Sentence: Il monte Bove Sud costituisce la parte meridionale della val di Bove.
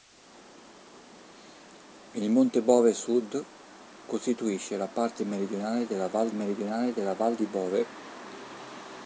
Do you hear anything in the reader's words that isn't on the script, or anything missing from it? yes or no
yes